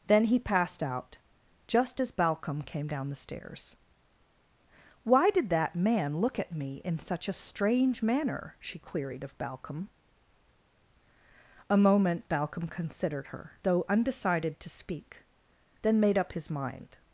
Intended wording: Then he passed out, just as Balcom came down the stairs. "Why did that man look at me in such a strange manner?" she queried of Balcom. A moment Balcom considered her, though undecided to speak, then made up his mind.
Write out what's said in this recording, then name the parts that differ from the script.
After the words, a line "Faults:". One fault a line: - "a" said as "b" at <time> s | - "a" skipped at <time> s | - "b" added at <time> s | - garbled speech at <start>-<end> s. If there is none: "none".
Then he passed out, just as Balcom came down the stairs. "Why did that man look at me in such a strange manner?" she queried of Balcom. A moment Balcom considered her, though undecided to speak, then made up his mind.
Faults:
none